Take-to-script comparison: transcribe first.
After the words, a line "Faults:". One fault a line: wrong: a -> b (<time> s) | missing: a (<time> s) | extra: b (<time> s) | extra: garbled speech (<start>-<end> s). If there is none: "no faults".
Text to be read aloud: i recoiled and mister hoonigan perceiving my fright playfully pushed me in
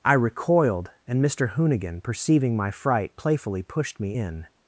i recoiled and mister hoonigan perceiving my fright playfully pushed me in
Faults:
no faults